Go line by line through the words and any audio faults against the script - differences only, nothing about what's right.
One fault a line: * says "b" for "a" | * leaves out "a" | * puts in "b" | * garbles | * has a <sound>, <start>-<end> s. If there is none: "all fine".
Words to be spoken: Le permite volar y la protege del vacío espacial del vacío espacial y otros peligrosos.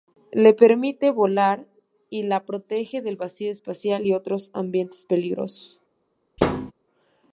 * leaves out "del vacío espacial"
* puts in "ambientes"
* has a thud, 6.4-6.7 s